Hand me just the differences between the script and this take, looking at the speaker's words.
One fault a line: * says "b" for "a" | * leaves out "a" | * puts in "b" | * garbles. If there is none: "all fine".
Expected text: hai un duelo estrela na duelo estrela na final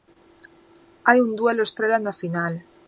* leaves out "duelo estrela na"